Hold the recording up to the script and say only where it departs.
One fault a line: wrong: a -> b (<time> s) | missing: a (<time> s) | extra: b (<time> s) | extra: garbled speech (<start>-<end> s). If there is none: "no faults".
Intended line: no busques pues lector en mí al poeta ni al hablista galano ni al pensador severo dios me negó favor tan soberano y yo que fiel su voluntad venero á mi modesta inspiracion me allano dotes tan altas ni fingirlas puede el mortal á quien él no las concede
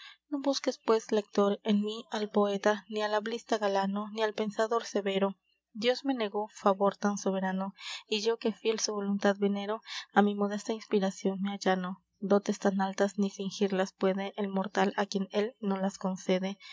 no faults